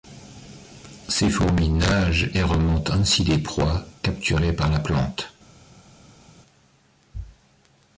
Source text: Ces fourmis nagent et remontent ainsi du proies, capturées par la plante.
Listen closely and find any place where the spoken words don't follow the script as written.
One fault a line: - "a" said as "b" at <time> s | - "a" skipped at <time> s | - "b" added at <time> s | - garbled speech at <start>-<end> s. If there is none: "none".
- "du" said as "des" at 3.2 s